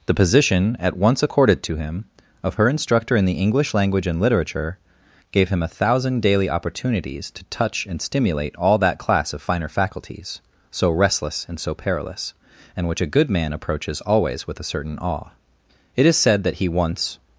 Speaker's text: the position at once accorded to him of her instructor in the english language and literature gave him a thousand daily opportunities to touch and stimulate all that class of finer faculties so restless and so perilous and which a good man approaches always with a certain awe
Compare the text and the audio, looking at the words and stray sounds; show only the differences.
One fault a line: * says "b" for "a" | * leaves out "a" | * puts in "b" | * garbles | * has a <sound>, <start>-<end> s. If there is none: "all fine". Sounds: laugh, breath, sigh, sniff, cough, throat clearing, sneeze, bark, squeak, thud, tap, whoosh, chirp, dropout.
* puts in "it is said that he once"